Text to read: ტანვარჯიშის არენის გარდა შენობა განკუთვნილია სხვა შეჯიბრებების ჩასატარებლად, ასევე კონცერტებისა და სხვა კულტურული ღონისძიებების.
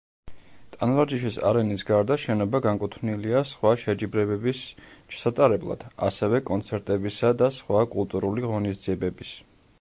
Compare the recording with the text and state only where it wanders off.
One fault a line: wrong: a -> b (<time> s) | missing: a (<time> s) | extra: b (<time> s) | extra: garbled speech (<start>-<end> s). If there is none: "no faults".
no faults